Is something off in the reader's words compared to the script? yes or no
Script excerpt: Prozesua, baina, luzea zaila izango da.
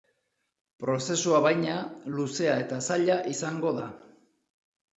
yes